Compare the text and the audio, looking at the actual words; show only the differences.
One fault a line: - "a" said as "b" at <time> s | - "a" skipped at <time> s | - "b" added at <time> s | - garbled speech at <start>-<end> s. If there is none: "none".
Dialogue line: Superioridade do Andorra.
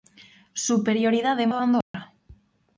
none